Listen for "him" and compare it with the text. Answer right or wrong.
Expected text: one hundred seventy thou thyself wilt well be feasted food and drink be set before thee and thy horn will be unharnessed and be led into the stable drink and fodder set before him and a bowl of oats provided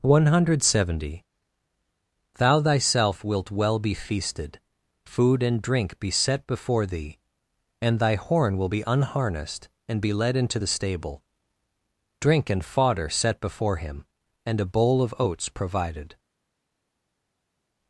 right